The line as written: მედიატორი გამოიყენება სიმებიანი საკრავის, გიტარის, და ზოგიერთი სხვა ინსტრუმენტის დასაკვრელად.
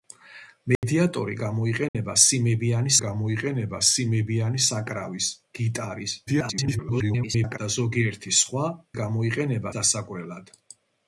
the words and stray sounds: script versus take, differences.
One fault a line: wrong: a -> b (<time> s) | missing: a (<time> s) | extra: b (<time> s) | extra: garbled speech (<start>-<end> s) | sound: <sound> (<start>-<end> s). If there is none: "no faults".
sound: dropout (0.8-0.8 s)
sound: dropout (1.9-1.9 s)
extra: გამოიყენება სიმებიანი (3.0 s)
extra: garbled speech (6.3-7.6 s)
wrong: ინსტრუმენტის -> გამოიყენება (9.0 s)